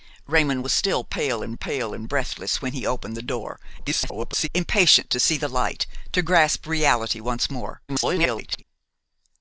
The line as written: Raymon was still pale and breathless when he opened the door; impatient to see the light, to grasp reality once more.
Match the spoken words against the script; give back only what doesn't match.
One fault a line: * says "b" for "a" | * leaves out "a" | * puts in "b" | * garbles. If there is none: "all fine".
* puts in "pale and"
* garbles
* garbles